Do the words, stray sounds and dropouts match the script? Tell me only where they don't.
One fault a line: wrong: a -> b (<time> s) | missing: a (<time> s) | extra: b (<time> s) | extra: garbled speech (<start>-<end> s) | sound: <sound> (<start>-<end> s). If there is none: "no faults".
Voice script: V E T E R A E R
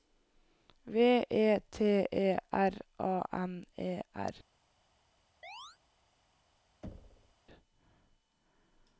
extra: N (3.3 s)
sound: chirp (5.4-5.8 s)
sound: thud (6.8-7.3 s)